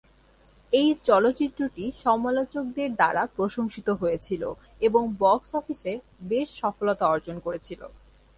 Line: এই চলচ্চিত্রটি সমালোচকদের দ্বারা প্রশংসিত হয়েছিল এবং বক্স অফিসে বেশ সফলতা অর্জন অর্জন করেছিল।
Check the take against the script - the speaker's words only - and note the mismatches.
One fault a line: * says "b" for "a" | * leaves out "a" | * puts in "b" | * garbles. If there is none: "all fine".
* leaves out "অর্জন"